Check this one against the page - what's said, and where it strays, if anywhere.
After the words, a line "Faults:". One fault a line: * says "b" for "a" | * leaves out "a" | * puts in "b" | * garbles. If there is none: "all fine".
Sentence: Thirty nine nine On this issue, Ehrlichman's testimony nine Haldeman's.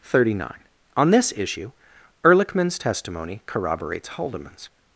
Thirty nine On this issue, Ehrlichman's testimony corroborates Haldeman's.
Faults:
* leaves out "nine"
* says "corroborates" for "nine"